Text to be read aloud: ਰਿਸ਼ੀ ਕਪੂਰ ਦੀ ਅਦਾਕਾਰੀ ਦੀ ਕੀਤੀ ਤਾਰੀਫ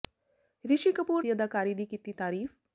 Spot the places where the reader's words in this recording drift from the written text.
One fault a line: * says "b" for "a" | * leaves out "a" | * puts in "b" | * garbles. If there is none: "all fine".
all fine